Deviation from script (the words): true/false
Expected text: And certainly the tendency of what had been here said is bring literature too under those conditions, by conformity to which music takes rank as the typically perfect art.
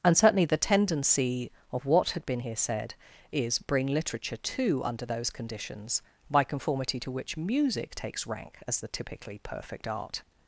false